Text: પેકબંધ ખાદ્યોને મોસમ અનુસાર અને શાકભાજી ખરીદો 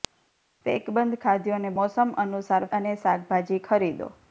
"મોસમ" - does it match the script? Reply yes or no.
yes